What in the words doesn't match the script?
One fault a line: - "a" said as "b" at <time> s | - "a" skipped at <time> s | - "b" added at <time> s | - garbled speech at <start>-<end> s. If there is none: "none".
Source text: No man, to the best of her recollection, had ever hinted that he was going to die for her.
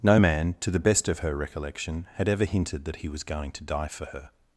none